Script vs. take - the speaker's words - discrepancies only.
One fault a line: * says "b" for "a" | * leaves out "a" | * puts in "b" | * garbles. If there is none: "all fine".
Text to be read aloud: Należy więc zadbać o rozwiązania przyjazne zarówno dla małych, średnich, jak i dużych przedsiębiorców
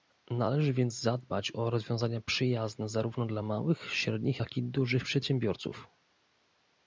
all fine